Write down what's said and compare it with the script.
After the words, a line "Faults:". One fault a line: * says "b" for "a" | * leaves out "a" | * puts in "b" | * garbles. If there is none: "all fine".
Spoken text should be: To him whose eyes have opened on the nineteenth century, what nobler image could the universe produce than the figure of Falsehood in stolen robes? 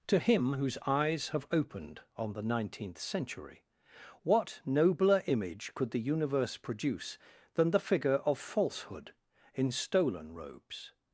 To him whose eyes have opened on the nineteenth century, what nobler image could the universe produce than the figure of Falsehood in stolen robes?
Faults:
all fine